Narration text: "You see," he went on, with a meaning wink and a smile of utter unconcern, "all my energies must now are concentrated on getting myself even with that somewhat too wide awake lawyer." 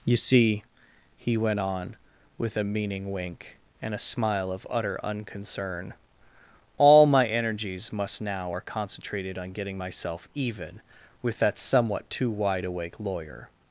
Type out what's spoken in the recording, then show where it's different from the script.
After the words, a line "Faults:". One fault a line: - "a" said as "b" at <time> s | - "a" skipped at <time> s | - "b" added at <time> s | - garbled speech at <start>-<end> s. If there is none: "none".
"You see," he went on, with a meaning wink and a smile of utter unconcern, "all my energies must now are concentrated on getting myself even with that somewhat too wide awake lawyer."
Faults:
none